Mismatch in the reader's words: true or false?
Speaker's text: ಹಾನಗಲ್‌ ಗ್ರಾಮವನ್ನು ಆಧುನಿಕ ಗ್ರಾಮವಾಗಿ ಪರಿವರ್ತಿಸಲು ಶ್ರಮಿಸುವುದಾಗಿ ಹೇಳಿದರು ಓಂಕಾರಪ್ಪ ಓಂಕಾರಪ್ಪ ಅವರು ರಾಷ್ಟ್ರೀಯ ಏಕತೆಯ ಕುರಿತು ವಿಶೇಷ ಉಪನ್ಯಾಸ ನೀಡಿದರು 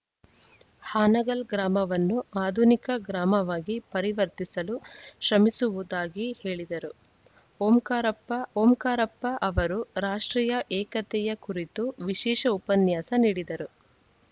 false